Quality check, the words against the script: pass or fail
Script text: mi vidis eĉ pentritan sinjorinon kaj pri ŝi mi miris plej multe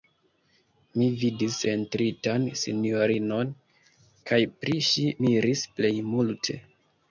fail